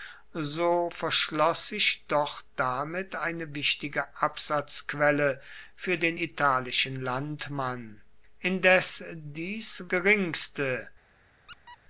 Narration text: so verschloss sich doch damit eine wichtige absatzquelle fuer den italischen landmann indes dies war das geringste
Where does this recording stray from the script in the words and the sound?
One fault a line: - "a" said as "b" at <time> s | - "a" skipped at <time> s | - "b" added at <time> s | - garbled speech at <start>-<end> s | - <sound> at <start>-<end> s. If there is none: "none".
- "war das" skipped at 9.9 s
- squeak at 11.5-11.8 s